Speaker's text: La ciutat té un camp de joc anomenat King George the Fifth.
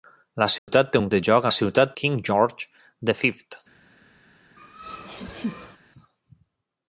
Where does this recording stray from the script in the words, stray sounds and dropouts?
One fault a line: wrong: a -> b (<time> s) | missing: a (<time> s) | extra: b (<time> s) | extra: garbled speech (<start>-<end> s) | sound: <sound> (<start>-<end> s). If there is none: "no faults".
sound: dropout (0.6-0.7 s)
missing: camp (1.1 s)
wrong: anomenat -> ciutat (1.6 s)
sound: laugh (4.6-5.8 s)